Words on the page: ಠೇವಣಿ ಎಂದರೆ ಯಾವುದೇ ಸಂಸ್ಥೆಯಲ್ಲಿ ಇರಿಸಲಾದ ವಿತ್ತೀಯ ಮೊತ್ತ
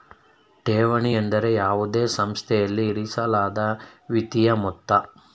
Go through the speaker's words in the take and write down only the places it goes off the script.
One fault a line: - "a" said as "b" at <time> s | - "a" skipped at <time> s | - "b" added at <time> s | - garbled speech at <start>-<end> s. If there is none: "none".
none